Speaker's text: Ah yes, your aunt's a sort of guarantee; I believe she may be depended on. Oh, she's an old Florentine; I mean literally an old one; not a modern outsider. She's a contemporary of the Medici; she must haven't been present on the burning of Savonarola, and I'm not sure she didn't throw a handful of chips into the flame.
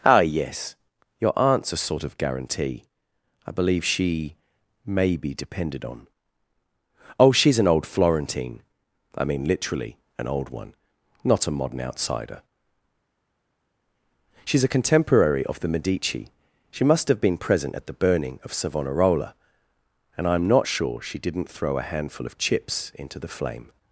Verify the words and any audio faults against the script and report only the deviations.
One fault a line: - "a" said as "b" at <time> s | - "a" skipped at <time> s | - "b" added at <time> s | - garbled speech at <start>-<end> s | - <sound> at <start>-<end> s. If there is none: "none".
- "haven't" said as "have" at 17.1 s
- "on" said as "at" at 17.7 s